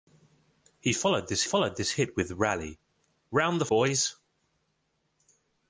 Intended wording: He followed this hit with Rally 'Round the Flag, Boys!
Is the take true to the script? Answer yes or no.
no